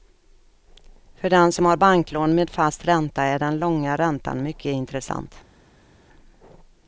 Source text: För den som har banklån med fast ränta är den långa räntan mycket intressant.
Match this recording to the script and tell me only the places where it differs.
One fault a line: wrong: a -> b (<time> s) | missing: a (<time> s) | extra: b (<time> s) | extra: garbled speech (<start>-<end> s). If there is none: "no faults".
no faults